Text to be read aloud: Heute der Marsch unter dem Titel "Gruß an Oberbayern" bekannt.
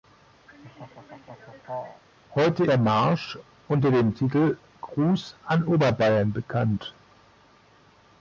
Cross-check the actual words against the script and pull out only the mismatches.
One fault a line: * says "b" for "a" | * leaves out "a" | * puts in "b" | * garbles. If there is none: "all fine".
all fine